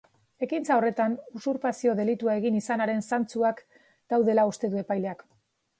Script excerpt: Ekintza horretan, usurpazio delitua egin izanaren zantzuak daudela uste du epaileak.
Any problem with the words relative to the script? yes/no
no